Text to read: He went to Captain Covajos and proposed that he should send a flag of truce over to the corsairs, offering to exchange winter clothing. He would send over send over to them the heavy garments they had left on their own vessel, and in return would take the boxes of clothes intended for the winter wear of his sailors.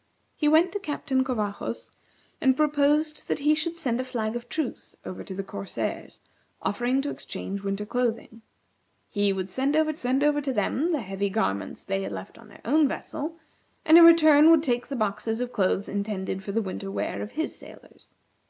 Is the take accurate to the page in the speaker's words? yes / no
yes